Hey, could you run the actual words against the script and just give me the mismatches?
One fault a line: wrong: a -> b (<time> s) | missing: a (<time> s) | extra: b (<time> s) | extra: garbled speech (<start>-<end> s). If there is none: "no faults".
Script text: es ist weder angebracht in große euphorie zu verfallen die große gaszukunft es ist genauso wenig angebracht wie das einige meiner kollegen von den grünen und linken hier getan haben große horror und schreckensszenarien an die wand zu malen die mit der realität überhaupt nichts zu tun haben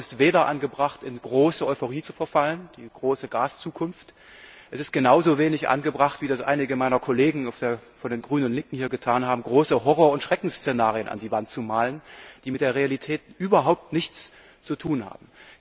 no faults